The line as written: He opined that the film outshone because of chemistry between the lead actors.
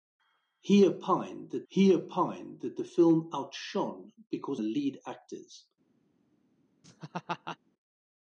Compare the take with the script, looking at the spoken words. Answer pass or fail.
fail